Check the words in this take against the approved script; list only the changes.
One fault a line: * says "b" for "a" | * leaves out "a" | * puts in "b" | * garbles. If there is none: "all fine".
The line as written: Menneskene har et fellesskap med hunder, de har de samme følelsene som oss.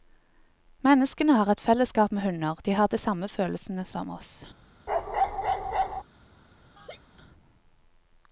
all fine